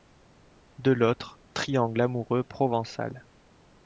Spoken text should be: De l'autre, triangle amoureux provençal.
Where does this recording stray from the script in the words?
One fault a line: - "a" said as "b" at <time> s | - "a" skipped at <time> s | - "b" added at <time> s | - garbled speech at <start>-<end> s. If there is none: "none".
none